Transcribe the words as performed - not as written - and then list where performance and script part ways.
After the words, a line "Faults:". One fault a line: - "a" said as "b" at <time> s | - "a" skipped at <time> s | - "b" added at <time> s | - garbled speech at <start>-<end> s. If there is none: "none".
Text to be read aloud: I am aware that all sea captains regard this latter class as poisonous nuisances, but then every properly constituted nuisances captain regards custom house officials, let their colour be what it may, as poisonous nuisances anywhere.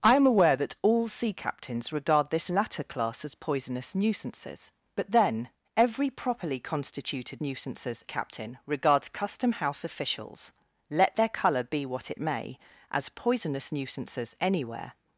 I am aware that all sea captains regard this latter class as poisonous nuisances, but then every properly constituted nuisances captain regards custom house officials, let their colour be what it may, as poisonous nuisances anywhere.
Faults:
none